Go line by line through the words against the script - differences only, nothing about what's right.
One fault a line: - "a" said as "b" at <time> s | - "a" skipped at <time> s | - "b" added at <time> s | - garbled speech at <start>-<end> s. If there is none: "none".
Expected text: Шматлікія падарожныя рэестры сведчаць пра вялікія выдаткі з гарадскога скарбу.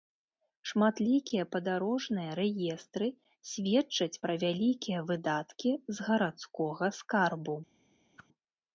none